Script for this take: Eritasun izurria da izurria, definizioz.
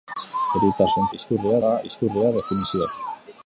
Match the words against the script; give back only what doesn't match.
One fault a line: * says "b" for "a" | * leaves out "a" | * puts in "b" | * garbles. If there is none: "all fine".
all fine